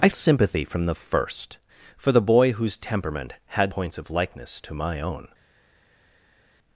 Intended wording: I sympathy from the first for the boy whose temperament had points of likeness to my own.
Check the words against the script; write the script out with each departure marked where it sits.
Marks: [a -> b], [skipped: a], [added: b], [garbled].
I sympathy from the first for the boy whose temperament had points of likeness to my own.